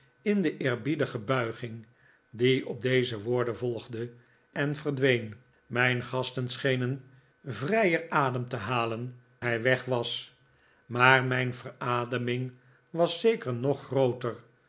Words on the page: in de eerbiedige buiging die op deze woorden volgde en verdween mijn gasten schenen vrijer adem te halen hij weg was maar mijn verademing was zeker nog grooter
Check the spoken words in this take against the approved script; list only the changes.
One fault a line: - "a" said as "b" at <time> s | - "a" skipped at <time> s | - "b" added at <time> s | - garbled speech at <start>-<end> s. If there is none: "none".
none